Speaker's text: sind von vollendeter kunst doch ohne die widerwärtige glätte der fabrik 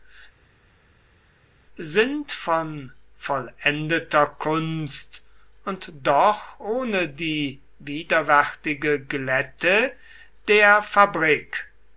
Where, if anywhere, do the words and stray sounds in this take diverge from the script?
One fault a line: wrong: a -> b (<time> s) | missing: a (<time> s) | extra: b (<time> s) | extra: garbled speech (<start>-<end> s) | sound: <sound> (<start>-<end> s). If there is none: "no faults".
extra: und (5.7 s)